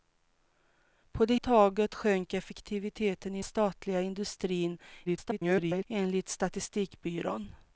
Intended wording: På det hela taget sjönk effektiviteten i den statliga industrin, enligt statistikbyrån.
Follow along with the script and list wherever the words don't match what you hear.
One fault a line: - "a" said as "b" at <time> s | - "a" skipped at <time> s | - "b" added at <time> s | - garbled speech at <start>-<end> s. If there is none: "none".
- "hela" skipped at 1.4 s
- "den" skipped at 3.4 s
- garbled speech at 5.1-5.9 s